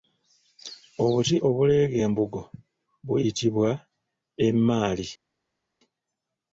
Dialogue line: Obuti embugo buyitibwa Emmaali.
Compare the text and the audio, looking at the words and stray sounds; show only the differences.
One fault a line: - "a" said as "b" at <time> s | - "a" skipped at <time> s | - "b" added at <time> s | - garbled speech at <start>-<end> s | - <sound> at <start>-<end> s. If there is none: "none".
- "obuleega" added at 1.5 s